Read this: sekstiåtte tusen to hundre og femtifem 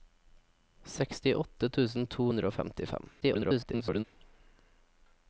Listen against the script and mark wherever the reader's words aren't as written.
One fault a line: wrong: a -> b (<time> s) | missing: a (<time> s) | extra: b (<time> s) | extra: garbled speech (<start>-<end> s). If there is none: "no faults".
extra: garbled speech (3.2-4.0 s)